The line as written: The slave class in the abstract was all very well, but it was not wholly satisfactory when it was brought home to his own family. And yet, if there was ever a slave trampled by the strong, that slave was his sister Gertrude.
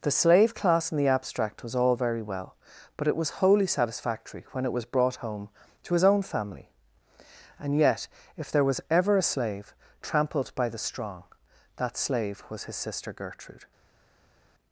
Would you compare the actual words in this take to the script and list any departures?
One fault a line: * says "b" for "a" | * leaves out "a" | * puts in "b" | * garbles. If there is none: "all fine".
* leaves out "not"